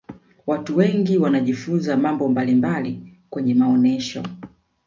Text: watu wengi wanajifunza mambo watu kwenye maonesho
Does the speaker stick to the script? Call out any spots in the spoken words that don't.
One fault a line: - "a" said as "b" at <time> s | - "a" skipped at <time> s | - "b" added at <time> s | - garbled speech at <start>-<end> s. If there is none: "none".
- "watu" said as "mbalimbali" at 2.3 s